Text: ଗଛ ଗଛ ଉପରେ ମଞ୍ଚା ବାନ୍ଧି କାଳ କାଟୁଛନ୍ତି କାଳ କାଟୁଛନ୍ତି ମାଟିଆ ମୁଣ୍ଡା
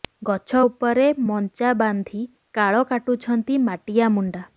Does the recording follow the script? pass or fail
fail